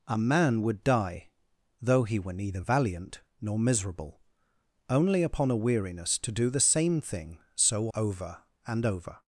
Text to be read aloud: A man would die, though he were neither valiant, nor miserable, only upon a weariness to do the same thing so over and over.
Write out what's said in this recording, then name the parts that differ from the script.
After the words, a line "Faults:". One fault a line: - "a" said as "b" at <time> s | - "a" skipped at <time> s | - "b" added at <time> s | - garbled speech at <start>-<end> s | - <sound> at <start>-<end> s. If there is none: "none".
A man would die, though he were neither valiant, nor miserable, only upon a weariness to do the same thing so over and over.
Faults:
none